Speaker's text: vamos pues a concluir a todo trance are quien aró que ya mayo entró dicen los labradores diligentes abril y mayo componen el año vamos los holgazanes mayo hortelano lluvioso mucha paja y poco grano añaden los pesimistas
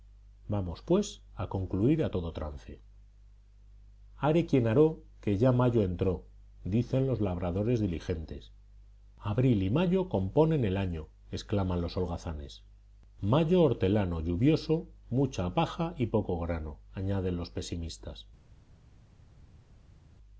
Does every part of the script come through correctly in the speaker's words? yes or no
no